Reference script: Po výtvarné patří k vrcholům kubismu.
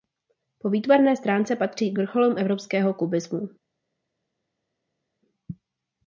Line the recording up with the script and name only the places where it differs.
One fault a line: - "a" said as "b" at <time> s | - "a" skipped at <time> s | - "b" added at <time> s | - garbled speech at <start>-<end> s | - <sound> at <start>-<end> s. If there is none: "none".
- "stránce" added at 1.1 s
- "evropského" added at 2.4 s